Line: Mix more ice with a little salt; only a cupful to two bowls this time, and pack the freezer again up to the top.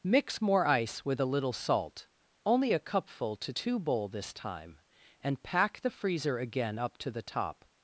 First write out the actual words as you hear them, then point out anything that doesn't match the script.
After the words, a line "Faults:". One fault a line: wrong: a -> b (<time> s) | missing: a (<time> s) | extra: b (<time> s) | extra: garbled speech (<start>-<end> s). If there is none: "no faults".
Mix more ice with a little salt; only a cupful to two bowl this time, and pack the freezer again up to the top.
Faults:
wrong: bowls -> bowl (3.8 s)